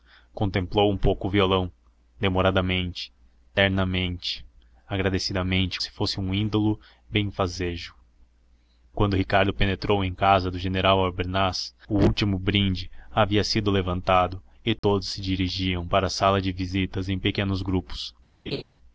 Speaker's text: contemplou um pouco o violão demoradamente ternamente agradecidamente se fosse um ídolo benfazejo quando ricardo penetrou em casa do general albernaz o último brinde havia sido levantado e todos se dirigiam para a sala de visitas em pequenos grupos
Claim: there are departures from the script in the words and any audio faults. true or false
true